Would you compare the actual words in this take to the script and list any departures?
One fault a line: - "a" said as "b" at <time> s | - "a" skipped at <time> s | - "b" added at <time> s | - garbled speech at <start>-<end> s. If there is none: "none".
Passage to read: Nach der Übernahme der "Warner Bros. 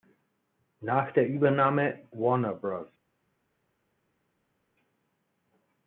- "der" skipped at 2.1 s